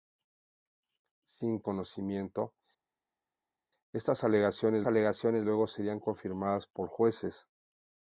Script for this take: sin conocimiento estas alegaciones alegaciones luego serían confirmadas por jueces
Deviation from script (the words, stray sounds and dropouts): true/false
false